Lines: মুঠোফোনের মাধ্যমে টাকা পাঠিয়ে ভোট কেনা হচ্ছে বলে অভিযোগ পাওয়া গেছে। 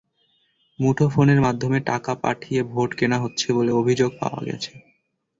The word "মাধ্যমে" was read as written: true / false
true